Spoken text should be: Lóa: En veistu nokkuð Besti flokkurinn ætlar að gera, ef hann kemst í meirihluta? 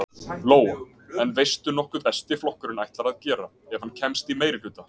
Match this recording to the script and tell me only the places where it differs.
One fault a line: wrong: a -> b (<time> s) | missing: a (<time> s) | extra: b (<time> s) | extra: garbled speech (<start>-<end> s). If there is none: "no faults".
no faults